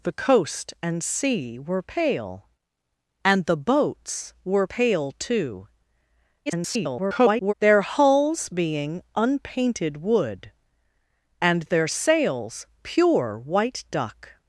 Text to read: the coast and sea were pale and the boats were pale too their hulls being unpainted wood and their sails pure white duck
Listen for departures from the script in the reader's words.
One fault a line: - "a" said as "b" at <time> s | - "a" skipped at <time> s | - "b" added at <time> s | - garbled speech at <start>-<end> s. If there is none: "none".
- garbled speech at 6.5-7.5 s